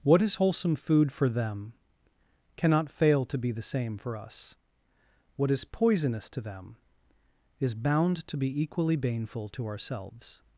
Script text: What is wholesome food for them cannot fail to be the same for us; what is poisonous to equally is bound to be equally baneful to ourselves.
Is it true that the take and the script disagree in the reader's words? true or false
true